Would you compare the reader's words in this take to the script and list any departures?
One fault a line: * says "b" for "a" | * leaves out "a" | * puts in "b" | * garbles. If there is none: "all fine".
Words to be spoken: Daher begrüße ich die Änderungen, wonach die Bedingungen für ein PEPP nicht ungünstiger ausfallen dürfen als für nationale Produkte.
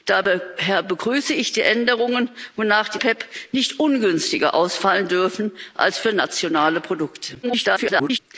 * leaves out "Bedingungen für ein"
* garbles